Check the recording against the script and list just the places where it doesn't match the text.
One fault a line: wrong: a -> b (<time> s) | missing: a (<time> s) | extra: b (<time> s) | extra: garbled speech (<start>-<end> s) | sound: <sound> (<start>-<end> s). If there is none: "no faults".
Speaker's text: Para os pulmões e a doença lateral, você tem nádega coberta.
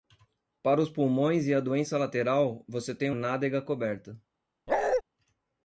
sound: bark (4.7-5.0 s)